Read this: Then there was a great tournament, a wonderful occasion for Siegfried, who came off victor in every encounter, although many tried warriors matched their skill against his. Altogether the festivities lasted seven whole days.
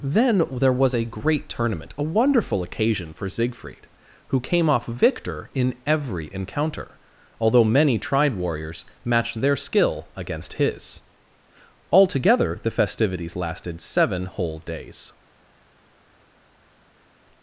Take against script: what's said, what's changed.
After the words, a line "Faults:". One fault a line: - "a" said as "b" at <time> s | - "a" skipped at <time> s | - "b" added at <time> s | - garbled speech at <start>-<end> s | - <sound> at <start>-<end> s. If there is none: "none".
Then there was a great tournament, a wonderful occasion for Siegfried, who came off victor in every encounter, although many tried warriors matched their skill against his. Altogether the festivities lasted seven whole days.
Faults:
none